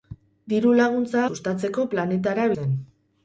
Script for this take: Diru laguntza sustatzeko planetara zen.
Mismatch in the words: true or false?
false